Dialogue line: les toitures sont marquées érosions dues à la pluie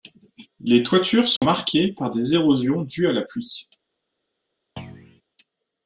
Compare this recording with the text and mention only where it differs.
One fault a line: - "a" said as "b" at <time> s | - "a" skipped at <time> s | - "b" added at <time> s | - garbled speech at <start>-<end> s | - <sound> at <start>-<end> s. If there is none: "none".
- dropout at 1.4-1.4 s
- "par des" added at 1.9 s
- thud at 4.8-5.2 s